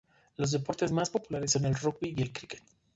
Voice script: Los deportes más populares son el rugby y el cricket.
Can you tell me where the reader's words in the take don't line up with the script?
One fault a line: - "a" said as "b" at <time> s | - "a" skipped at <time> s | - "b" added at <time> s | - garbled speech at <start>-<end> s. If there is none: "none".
none